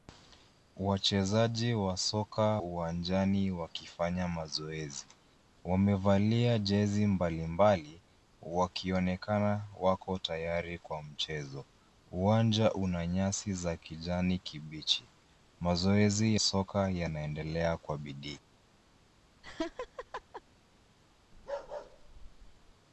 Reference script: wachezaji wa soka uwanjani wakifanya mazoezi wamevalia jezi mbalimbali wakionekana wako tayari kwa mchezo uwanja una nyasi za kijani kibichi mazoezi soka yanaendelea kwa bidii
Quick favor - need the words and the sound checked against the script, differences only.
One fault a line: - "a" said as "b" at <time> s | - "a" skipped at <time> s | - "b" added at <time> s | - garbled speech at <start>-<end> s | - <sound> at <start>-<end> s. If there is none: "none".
- laugh at 19.4-20.4 s
- bark at 21.3-22.7 s